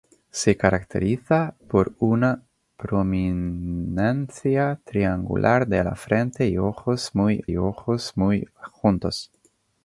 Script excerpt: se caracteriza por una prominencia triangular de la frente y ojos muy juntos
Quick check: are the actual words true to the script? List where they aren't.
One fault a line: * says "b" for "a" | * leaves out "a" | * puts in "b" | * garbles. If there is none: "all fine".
* puts in "y ojos muy"